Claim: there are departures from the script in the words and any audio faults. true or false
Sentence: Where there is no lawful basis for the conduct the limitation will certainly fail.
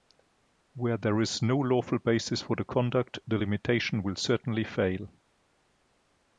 false